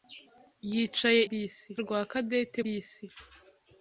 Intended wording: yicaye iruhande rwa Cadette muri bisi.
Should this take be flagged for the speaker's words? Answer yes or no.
yes